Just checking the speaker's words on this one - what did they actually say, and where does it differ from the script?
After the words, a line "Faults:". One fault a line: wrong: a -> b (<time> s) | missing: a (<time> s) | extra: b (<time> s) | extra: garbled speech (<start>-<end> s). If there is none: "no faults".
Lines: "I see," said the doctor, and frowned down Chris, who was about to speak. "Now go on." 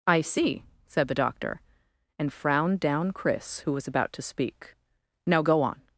"I see," said the doctor, and frowned down Chris, who was about to speak. "Now go on."
Faults:
no faults